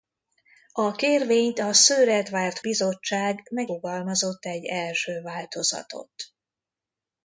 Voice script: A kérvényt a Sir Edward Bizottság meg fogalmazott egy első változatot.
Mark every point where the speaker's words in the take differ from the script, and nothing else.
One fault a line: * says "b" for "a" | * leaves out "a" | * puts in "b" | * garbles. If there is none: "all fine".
all fine